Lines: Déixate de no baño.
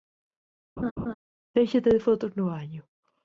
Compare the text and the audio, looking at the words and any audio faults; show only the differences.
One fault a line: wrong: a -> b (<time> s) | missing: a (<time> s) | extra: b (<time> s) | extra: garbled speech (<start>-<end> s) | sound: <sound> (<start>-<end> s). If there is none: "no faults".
sound: laugh (0.8-1.1 s)
extra: fotos (2.0 s)